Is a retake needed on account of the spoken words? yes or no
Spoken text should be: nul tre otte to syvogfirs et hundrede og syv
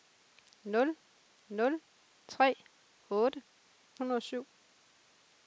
yes